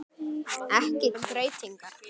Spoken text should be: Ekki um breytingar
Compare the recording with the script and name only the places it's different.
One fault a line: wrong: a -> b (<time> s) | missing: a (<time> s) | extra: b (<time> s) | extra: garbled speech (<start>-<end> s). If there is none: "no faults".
no faults